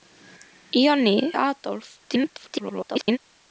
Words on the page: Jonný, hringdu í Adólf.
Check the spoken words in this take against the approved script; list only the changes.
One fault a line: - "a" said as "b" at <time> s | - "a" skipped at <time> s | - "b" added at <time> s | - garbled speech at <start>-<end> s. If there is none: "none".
- "hringdu" skipped at 1.1 s
- garbled speech at 2.0-3.2 s